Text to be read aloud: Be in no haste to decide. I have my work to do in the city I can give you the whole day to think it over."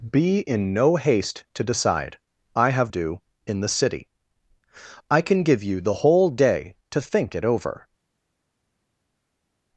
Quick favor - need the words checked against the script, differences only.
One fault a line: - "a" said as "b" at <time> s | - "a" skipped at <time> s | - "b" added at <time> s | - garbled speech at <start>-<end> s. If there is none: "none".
- "my work to" skipped at 2.9 s